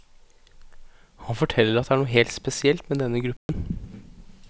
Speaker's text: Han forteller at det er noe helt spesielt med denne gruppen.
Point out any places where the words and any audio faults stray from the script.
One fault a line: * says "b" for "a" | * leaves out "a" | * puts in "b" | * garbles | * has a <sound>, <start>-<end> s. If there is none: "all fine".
* has a dropout, 3.4-3.5 s